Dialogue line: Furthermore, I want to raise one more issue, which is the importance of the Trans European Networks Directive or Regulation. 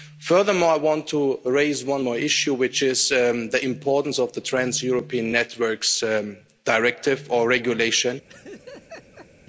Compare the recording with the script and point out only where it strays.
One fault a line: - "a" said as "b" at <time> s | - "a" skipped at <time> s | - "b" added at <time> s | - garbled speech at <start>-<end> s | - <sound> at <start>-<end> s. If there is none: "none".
- laugh at 8.3-9.3 s